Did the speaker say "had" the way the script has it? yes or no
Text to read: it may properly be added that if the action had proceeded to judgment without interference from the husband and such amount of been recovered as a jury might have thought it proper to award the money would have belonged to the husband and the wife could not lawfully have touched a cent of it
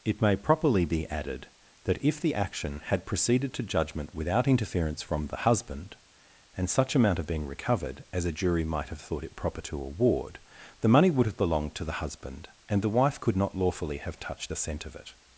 yes